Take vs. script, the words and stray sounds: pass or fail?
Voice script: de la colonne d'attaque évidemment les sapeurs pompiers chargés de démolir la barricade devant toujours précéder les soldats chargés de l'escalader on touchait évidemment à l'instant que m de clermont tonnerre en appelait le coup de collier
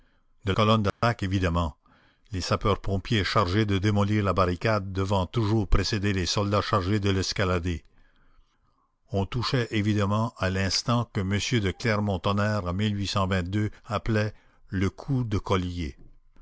fail